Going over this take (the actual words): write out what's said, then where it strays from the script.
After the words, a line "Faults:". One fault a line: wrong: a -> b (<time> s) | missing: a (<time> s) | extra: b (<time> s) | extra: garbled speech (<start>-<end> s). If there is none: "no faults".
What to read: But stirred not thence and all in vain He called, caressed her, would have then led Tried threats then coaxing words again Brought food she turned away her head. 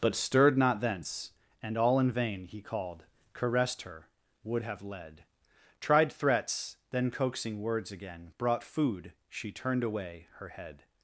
But stirred not thence and all in vain He called, caressed her, would have led Tried threats then coaxing words again Brought food she turned away her head.
Faults:
missing: then (4.8 s)